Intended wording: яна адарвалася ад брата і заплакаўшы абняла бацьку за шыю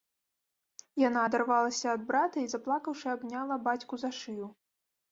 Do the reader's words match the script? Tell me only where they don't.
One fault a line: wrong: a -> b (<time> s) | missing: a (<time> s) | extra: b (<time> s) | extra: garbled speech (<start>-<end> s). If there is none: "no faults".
no faults